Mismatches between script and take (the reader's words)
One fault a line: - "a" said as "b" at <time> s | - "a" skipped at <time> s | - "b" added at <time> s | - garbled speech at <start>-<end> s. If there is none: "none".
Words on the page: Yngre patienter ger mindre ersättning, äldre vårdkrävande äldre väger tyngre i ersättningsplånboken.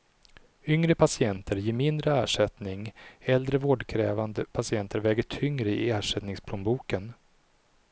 - "äldre" said as "patienter" at 4.5 s